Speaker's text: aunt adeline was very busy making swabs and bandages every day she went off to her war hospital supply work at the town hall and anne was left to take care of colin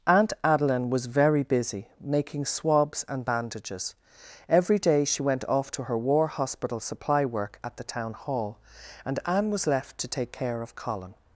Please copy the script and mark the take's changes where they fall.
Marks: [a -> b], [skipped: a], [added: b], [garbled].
aunt adeline was very busy making swabs and bandages every day she went off to her war hospital supply work at the town hall and anne was left to take care of colin